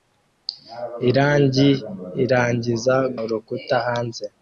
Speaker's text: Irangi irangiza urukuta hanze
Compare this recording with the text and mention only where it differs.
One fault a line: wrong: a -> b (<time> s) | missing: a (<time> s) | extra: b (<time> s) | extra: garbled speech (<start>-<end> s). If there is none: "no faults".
no faults